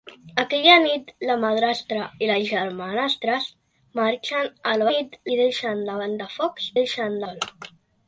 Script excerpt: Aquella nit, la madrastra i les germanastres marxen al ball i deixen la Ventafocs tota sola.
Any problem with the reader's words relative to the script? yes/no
yes